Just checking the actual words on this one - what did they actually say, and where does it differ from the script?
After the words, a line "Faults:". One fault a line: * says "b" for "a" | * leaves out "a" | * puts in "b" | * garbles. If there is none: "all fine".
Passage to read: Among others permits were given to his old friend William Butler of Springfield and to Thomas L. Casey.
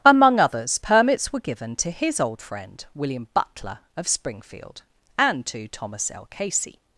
Among others permits were given to his old friend William Butler of Springfield and to Thomas L. Casey.
Faults:
all fine